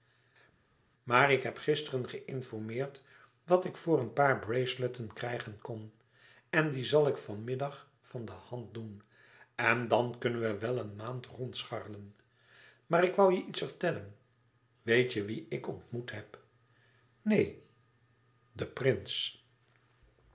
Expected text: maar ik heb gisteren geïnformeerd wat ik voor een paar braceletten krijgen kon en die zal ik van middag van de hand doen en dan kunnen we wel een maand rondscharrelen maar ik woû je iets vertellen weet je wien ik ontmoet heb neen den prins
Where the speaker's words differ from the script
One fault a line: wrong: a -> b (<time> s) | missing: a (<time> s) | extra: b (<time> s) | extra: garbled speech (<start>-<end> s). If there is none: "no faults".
no faults